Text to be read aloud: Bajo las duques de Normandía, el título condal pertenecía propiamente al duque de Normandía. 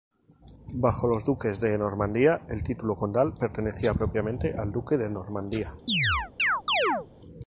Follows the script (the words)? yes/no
no